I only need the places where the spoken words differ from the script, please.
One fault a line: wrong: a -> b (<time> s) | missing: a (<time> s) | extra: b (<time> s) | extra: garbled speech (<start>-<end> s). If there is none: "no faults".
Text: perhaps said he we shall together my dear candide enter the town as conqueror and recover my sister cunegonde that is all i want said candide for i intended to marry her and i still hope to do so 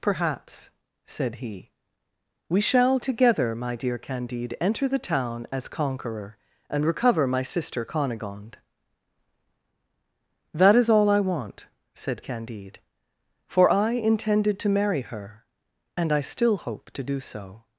no faults